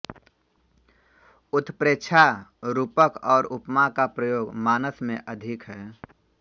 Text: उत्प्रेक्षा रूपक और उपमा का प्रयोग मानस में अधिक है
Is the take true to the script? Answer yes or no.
yes